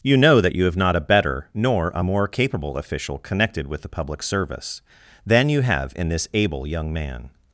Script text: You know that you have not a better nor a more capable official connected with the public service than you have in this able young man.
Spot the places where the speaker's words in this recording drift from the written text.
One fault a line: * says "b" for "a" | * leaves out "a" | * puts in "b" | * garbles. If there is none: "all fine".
all fine